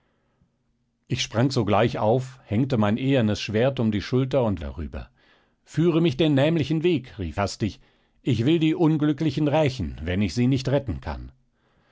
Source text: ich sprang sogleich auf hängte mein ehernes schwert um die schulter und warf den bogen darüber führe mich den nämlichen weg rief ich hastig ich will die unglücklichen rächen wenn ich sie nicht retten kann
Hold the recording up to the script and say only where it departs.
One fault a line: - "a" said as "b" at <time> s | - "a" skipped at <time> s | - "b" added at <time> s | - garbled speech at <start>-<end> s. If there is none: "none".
- "warf den bogen" skipped at 4.6 s
- "ich" skipped at 7.4 s